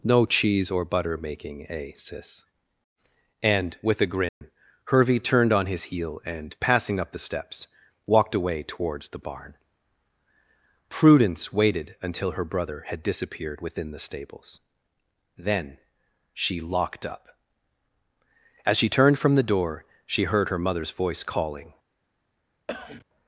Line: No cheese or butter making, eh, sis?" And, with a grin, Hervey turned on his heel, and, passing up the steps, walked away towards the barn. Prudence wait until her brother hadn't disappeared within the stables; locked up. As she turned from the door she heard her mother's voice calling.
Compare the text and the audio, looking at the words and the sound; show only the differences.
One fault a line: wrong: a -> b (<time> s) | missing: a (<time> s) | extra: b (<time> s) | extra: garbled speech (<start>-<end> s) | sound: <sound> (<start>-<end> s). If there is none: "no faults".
sound: dropout (4.3-4.4 s)
wrong: wait -> waited (11.5 s)
wrong: hadn't -> had (12.9 s)
extra: then she (15.4 s)
sound: cough (22.7-23.1 s)